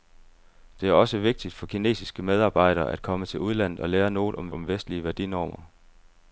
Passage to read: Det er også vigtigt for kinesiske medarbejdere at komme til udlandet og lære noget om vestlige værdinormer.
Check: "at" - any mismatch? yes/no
no